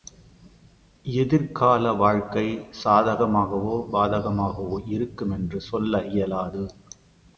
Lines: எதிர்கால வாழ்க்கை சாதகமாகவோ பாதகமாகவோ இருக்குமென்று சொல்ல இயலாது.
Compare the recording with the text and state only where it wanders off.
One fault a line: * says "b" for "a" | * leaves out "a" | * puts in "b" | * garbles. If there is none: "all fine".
all fine